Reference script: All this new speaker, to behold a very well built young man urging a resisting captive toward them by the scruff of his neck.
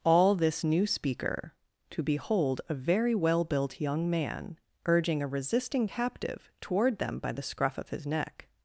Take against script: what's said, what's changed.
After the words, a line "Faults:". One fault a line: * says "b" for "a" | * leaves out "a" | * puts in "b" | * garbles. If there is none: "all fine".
All this new speaker, to behold a very well built young man urging a resisting captive toward them by the scruff of his neck.
Faults:
all fine